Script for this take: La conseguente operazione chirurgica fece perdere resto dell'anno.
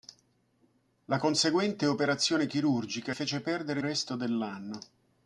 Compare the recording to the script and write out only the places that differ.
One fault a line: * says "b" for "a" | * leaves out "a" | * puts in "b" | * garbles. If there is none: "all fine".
all fine